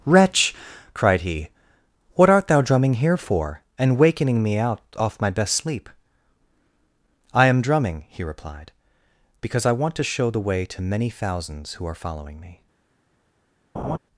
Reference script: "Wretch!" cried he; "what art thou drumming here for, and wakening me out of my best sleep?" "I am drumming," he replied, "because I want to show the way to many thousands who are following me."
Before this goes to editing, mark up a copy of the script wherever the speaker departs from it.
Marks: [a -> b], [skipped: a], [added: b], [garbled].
"Wretch!" cried he; "what art thou drumming here for, and wakening me out [of -> off] my best sleep?" "I am drumming," he replied, "because I want to show the way to many thousands who are following me."